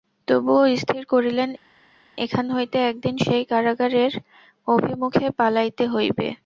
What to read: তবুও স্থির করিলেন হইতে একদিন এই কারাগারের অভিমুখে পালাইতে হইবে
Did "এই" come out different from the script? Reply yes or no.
yes